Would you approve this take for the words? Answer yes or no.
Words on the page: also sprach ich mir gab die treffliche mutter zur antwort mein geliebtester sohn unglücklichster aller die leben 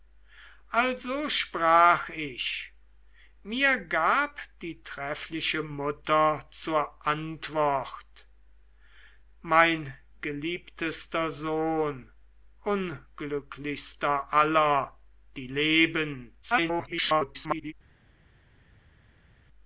no